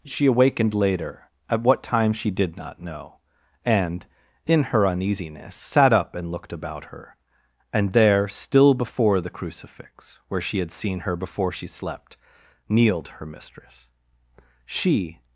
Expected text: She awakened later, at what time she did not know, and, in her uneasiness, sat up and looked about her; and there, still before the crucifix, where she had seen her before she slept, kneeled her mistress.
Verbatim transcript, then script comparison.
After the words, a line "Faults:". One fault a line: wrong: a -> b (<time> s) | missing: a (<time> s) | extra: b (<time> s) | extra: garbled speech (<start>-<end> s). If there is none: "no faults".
She awakened later, at what time she did not know, and, in her uneasiness, sat up and looked about her; and there, still before the crucifix, where she had seen her before she slept, kneeled her mistress. She
Faults:
extra: She (14.7 s)